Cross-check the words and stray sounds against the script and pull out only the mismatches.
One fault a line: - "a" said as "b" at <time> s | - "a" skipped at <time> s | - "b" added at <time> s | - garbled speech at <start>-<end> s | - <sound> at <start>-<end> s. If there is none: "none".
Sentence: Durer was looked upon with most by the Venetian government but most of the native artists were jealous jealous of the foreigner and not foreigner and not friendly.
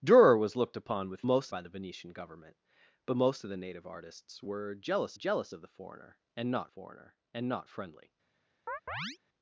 - chirp at 8.7-9.2 s